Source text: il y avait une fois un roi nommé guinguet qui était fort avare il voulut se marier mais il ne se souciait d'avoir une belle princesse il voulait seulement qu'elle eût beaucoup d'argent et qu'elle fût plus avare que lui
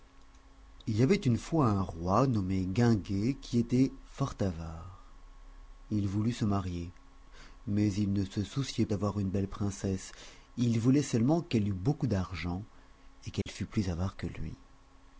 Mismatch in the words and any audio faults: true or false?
true